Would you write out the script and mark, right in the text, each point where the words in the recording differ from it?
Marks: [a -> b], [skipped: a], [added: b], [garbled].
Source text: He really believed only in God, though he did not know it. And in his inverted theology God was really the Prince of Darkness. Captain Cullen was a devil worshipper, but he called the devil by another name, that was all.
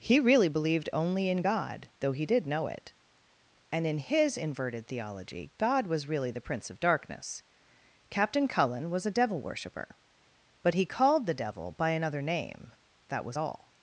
He really believed only in God, though he did [skipped: not] know it. And in his inverted theology God was really the Prince of Darkness. Captain Cullen was a devil worshipper, but he called the devil by another name, that was all.